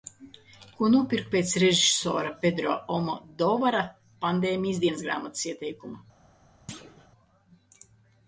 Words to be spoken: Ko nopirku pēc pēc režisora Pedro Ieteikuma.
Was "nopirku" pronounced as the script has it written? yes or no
yes